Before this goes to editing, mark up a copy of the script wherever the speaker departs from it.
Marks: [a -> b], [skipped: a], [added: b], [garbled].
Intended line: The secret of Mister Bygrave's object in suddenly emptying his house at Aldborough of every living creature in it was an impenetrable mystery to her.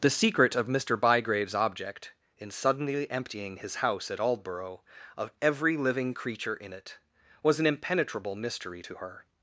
The secret of Mister Bygrave's object in suddenly emptying his house at Aldborough of every living creature in it was an impenetrable mystery to her.